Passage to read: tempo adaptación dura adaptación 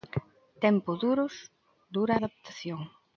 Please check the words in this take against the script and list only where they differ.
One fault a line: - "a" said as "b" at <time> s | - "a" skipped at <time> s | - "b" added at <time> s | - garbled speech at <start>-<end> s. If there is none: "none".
- "adaptación" said as "duros" at 1.0 s